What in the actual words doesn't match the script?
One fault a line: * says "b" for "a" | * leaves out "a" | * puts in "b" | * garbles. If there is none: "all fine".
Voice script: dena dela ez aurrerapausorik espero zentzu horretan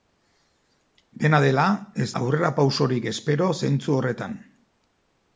all fine